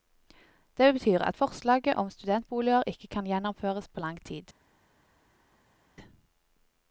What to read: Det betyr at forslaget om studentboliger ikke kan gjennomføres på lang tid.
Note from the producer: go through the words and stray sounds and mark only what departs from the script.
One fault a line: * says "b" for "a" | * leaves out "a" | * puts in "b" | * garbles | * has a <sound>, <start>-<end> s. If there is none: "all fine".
all fine